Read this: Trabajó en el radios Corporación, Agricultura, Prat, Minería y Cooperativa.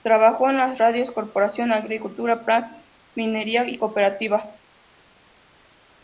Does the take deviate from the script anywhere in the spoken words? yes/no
yes